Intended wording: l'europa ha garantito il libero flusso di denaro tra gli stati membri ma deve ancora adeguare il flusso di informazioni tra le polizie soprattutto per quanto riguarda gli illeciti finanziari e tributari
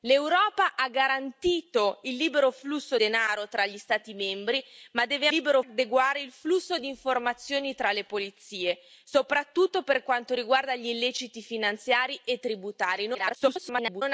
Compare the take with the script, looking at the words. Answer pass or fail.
fail